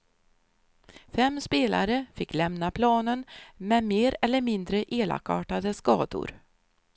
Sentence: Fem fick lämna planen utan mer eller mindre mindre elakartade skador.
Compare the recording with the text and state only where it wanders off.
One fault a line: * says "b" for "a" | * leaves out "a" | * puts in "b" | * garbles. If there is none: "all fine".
* puts in "spelare"
* says "med" for "utan"
* leaves out "mindre"